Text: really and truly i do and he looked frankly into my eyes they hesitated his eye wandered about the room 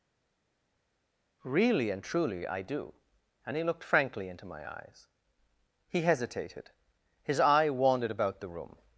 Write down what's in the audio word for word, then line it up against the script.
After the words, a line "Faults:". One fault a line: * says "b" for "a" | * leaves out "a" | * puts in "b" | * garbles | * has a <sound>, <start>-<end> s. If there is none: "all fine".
really and truly i do and he looked frankly into my eyes he hesitated his eye wandered about the room
Faults:
* says "he" for "they"